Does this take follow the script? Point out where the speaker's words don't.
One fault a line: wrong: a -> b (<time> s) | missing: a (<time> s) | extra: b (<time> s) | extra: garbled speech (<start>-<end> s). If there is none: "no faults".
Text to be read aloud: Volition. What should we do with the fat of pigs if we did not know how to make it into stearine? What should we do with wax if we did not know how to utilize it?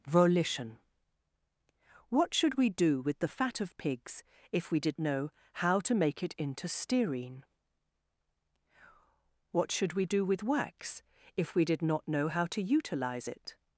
missing: not (5.0 s)